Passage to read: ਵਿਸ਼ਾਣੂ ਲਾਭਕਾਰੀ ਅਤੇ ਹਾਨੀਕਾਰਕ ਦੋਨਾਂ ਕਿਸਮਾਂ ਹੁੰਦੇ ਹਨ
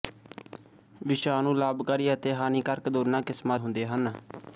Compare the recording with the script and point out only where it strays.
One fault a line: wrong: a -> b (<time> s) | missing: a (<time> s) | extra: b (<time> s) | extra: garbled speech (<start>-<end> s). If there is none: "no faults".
no faults